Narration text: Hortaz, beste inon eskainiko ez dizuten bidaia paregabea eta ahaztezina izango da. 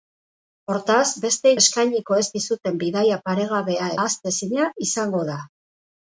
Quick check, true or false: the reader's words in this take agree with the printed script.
false